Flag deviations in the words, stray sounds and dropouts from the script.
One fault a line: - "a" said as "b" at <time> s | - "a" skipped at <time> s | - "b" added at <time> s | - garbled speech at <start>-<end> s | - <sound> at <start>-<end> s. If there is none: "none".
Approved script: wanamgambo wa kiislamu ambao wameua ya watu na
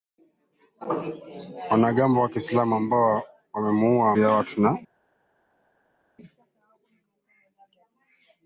none